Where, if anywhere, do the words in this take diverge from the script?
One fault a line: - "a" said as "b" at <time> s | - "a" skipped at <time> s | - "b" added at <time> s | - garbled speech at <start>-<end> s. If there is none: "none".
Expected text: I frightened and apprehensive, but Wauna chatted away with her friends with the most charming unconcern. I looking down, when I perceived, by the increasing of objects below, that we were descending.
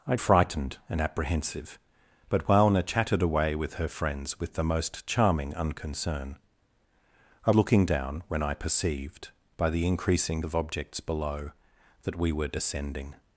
none